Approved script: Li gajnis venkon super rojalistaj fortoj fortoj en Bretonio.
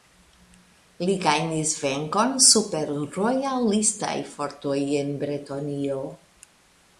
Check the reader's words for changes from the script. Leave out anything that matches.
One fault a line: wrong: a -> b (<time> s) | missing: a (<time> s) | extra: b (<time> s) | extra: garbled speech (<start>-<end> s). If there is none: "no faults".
missing: fortoj (4.8 s)